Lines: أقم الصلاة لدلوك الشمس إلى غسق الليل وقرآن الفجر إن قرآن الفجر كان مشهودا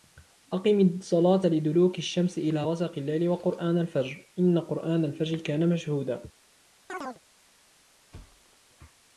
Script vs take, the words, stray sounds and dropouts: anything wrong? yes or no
yes